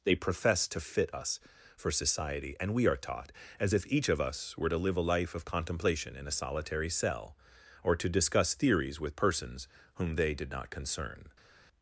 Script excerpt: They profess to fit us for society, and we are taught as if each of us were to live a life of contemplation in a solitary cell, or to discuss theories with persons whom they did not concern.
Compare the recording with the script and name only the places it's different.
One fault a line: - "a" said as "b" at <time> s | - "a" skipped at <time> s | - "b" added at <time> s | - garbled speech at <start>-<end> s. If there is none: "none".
none